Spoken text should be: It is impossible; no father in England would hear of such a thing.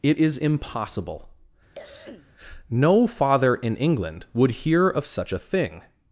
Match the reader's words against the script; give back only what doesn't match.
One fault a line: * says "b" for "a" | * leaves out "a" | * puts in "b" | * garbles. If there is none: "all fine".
all fine